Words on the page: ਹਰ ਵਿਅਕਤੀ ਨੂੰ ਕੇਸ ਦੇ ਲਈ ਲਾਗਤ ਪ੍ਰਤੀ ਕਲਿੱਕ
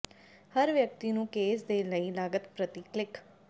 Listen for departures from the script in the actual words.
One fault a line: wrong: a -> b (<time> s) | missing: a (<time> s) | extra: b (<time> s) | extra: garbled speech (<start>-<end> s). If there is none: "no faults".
no faults